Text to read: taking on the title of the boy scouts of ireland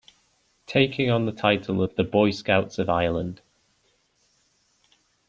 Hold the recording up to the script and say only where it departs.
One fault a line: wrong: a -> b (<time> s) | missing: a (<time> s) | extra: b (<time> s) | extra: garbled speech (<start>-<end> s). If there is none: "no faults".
no faults